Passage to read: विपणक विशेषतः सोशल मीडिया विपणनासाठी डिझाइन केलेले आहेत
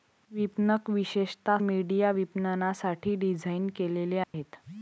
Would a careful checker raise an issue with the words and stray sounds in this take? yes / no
yes